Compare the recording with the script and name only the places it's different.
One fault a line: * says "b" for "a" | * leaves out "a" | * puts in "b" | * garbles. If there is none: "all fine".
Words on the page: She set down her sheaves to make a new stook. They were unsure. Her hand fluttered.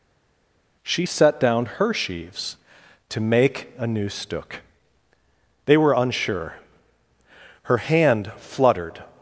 all fine